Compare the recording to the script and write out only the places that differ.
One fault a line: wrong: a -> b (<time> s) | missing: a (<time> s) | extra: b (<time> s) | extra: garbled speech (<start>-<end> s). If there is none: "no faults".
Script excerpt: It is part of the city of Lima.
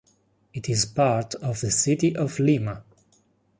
no faults